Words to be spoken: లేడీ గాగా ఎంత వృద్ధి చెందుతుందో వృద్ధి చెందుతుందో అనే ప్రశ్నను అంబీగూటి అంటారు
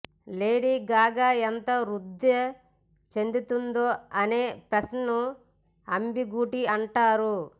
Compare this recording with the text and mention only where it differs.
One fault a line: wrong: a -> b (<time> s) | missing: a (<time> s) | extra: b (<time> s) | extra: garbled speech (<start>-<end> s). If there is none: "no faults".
missing: వృద్ధి చెందుతుందో (3.9 s)